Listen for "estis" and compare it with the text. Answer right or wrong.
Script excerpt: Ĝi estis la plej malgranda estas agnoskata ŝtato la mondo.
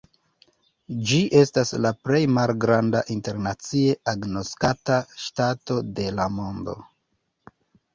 wrong